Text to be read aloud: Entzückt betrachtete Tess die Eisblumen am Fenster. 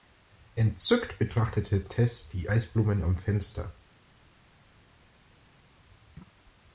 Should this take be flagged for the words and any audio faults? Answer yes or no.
no